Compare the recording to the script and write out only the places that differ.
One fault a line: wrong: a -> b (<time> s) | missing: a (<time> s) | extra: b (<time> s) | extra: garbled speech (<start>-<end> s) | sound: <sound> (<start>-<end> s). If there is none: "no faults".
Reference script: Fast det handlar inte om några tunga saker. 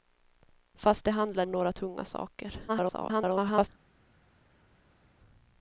missing: inte (1.4 s)
extra: garbled speech (2.7-3.7 s)